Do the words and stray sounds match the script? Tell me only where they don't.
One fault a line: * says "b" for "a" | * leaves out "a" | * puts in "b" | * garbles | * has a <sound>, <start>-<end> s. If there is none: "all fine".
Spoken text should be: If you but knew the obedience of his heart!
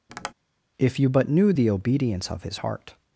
* has a tap, 0.1-0.3 s